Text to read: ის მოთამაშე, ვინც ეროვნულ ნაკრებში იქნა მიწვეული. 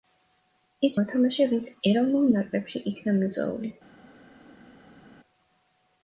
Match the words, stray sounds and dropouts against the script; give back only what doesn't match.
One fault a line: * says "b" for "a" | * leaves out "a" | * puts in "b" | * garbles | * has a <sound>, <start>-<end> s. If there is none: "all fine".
all fine